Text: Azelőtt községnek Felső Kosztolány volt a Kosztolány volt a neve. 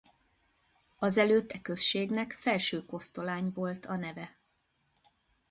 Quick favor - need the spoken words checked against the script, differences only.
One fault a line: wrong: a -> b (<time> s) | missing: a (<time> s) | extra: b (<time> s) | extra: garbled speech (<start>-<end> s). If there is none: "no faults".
extra: e (1.5 s)
missing: Kosztolány volt a (4.0 s)